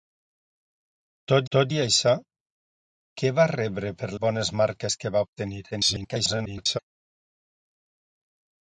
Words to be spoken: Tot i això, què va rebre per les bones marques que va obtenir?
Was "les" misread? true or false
true